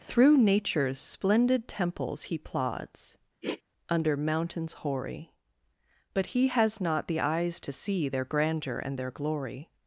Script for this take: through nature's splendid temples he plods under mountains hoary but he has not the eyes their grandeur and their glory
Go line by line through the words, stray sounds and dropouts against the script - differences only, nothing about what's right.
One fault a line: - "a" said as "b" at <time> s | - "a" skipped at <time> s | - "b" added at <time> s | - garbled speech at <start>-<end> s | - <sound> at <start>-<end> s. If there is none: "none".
- sniff at 3.4-3.6 s
- "to see" added at 7.6 s